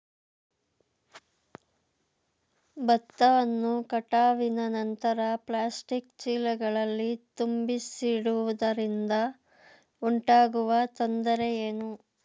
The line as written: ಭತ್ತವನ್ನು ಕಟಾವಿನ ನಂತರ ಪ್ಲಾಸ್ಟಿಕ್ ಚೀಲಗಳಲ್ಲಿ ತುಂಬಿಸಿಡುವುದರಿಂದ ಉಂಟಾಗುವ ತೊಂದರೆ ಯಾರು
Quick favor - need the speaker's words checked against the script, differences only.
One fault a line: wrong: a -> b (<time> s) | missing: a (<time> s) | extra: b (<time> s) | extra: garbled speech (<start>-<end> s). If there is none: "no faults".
wrong: ಯಾರು -> ಏನು (11.6 s)